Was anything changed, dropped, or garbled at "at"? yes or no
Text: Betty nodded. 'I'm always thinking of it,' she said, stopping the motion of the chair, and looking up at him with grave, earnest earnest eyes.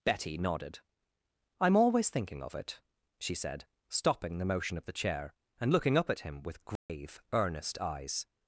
no